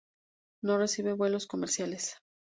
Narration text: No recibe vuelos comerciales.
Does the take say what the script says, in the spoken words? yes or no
yes